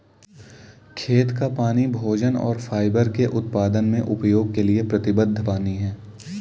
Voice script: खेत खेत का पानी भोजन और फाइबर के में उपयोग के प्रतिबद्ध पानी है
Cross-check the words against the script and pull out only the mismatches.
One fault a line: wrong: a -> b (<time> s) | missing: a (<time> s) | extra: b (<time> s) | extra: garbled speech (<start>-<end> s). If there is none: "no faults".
missing: खेत (1.3 s)
extra: उत्पादन (3.4 s)
extra: लिए (4.6 s)